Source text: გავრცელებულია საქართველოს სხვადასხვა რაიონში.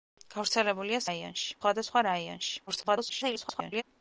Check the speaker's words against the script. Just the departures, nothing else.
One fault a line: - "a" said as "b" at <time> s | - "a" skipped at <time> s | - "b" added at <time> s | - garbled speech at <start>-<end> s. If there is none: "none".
- "საქართველოს" said as "რაიონში" at 1.1 s
- garbled speech at 2.7-3.8 s